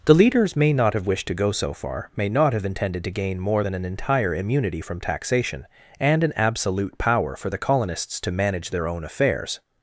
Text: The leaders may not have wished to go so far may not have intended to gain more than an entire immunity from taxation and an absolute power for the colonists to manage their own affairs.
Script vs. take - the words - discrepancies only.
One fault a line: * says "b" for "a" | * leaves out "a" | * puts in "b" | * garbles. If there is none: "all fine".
all fine